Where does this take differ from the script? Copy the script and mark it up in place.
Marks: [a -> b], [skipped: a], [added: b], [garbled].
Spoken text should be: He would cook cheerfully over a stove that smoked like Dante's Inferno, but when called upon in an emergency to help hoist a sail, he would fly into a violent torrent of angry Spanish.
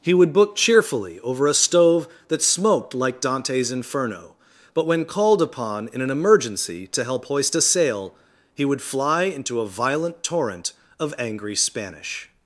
He would [cook -> book] cheerfully over a stove that smoked like Dante's Inferno, but when called upon in an emergency to help hoist a sail, he would fly into a violent torrent of angry Spanish.